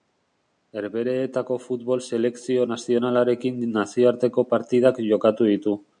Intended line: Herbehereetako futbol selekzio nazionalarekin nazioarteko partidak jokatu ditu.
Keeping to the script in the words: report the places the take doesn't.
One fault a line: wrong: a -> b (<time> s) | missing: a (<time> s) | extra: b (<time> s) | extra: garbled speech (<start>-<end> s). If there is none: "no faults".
no faults